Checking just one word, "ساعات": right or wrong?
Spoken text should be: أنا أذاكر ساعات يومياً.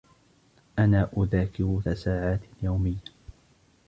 right